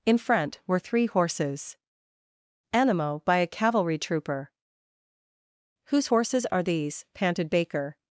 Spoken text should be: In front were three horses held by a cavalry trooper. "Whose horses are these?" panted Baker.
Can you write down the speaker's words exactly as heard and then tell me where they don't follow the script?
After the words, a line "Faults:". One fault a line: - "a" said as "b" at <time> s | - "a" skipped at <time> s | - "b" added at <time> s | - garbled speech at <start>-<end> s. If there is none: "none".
In front were three horses animo by a cavalry trooper. "Whose horses are these?" panted Baker.
Faults:
- "held" said as "animo" at 2.7 s